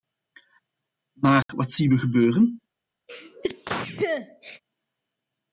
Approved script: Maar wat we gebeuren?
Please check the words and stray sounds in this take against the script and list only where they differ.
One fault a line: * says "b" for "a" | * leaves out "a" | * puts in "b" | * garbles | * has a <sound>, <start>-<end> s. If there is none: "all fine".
* has a dropout, 1.4-1.5 s
* puts in "zien"
* has a sneeze, 3.1-4.6 s